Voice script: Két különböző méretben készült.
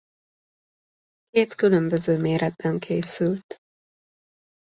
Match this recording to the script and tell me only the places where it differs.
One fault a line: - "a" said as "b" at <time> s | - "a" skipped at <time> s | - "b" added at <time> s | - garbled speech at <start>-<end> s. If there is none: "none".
none